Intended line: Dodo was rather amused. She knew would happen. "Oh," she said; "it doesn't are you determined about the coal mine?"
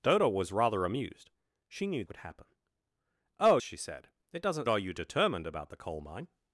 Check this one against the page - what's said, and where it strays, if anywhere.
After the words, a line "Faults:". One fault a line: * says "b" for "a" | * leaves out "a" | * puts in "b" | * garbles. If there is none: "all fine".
Dodo was rather amused. She knew would happen. "Oh," she said; "it doesn't are you determined about the coal mine?"
Faults:
all fine